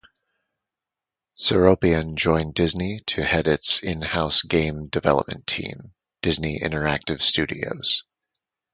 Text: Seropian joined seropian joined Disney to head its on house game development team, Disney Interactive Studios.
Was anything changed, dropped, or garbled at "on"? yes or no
yes